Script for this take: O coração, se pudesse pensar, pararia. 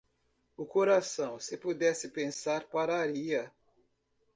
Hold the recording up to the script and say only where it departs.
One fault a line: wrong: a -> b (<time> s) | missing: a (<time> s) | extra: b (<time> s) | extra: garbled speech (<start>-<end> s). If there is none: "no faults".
no faults